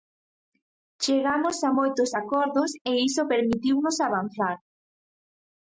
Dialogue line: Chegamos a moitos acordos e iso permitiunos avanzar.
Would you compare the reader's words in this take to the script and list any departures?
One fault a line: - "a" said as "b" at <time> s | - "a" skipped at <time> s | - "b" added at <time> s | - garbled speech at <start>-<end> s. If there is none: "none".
none